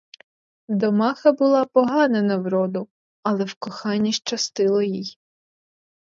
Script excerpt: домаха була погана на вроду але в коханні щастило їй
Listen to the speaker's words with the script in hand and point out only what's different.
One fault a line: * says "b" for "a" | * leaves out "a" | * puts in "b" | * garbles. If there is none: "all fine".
all fine